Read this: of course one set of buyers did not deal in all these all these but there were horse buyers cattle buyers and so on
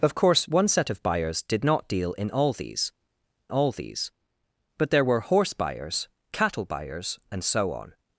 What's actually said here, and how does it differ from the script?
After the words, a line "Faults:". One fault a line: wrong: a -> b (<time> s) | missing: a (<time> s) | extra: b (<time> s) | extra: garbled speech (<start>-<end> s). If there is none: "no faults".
of course one set of buyers did not deal in all these all these but there were horse buyers cattle buyers and so on
Faults:
no faults